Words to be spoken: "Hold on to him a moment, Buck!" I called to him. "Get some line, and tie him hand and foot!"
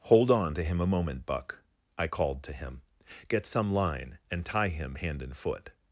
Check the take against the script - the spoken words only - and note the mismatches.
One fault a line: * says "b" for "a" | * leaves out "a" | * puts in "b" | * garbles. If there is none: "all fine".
all fine